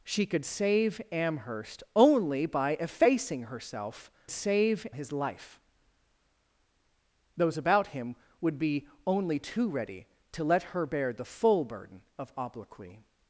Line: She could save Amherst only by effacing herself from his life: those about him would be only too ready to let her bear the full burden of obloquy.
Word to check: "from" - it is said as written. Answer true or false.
false